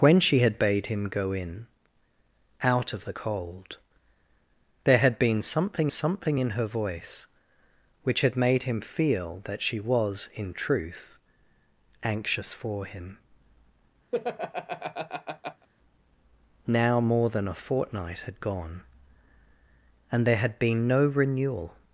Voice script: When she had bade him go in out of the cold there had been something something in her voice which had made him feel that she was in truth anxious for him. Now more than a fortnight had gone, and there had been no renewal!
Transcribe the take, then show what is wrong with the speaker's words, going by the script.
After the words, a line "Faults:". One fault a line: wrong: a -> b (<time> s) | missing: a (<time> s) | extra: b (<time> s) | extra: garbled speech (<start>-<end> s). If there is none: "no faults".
When she had bade him go in out of the cold there had been something something in her voice which had made him feel that she was in truth anxious for him. Now more than a fortnight had gone, and there had been no renewal!
Faults:
no faults